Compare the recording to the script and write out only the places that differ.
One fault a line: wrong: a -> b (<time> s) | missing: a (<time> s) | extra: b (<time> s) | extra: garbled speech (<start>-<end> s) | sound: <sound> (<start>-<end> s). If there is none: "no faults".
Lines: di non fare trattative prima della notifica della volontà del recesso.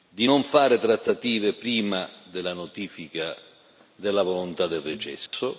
sound: dropout (5.3-5.3 s)